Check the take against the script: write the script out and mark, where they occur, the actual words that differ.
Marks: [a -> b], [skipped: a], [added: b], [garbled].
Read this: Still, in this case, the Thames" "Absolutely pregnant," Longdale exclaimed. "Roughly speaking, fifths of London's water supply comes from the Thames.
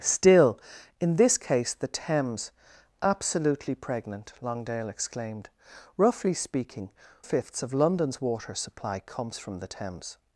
Still, in this case, the Thames" "Absolutely pregnant," Longdale exclaimed. "Roughly speaking, fifths of London's water supply comes from the Thames.